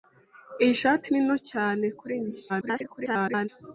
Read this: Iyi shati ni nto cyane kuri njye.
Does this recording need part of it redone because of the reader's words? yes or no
yes